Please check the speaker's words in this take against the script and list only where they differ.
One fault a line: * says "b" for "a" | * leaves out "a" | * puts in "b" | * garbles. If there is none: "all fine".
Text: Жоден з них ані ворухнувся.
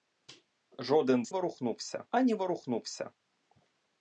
* says "ворухнувся" for "них"